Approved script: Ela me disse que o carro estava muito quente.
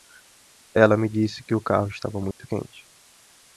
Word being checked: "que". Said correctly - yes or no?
yes